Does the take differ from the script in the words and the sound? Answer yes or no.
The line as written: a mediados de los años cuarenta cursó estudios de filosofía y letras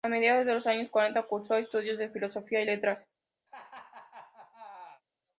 yes